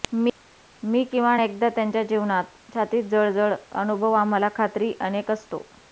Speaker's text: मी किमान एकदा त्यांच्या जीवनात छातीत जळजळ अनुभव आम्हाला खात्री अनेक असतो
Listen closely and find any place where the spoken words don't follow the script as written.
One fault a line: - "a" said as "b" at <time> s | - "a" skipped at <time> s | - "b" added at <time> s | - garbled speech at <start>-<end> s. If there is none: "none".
none